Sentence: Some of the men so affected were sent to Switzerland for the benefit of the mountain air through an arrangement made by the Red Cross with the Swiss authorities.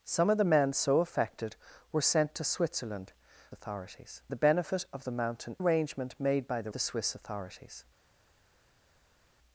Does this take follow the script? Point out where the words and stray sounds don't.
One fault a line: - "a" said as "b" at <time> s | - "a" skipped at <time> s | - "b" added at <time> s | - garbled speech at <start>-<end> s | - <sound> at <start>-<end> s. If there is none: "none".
- "for" said as "authorities" at 3.5 s
- "air through an" skipped at 5.6 s
- "Red Cross with" skipped at 6.7 s